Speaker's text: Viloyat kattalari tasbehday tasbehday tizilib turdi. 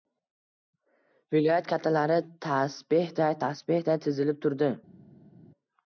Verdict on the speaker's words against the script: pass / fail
pass